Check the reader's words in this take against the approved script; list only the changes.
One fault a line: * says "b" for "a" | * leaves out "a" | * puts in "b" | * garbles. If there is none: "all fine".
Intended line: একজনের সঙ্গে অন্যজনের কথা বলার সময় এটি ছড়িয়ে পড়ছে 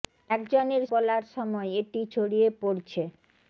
* leaves out "সঙ্গে অন্যজনের কথা"